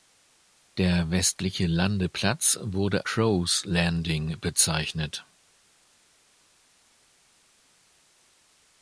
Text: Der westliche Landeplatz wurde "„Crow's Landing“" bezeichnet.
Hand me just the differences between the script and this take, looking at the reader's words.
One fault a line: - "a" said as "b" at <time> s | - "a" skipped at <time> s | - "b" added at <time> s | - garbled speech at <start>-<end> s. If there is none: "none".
none